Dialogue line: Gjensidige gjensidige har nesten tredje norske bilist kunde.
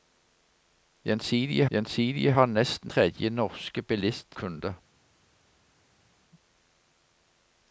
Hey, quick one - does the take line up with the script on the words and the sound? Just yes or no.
yes